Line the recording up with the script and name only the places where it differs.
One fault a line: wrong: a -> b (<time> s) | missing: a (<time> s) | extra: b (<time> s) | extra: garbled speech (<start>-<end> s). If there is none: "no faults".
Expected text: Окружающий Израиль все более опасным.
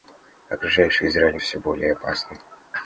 no faults